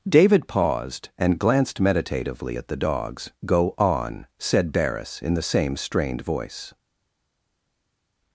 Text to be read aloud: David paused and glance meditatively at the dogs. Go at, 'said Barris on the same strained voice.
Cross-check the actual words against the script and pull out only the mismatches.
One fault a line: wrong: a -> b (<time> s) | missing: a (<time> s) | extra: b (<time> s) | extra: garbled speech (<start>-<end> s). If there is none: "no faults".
wrong: glance -> glanced (1.4 s)
wrong: at -> on (3.8 s)
wrong: on -> in (5.2 s)